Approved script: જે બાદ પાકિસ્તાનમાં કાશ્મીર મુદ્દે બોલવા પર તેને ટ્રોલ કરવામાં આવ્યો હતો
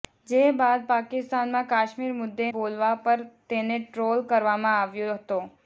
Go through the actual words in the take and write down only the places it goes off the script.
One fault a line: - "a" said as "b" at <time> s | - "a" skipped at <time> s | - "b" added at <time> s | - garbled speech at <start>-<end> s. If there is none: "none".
none